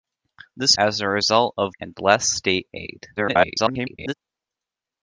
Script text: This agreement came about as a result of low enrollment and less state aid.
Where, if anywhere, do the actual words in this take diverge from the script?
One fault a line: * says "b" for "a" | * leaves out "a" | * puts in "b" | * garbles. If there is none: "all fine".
* leaves out "agreement came about"
* leaves out "low enrollment"
* garbles